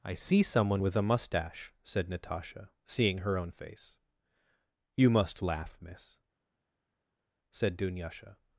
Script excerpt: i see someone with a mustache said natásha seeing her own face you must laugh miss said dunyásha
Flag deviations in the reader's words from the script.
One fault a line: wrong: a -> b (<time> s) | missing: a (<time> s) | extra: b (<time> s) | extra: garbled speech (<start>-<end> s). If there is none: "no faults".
no faults